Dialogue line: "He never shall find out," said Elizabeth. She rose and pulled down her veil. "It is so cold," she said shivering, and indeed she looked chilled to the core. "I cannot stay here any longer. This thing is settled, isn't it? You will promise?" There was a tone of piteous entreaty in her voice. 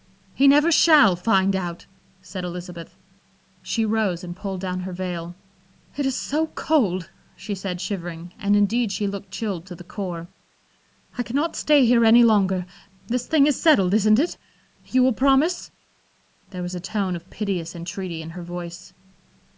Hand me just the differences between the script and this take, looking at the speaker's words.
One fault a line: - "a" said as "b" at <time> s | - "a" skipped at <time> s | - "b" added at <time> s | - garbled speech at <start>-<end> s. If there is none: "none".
none